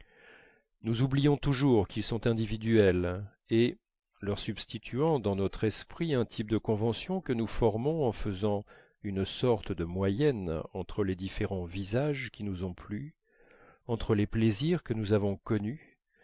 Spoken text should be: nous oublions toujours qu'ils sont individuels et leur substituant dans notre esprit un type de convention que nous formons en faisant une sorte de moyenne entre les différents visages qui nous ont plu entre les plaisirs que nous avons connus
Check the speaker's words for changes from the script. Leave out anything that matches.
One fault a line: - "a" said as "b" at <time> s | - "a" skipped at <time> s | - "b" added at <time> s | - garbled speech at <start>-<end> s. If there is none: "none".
none